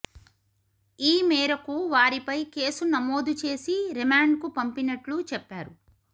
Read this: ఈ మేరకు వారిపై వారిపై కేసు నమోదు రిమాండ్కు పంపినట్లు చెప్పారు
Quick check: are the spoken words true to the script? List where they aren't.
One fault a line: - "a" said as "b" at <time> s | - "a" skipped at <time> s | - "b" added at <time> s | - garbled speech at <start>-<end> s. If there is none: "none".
- "వారిపై" skipped at 2.4 s
- "చేసి" added at 3.4 s